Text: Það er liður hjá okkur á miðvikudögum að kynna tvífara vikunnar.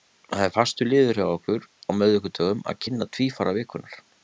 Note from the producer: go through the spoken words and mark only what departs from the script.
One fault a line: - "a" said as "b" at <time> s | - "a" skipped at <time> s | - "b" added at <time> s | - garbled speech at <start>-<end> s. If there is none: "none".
- "fastur" added at 0.5 s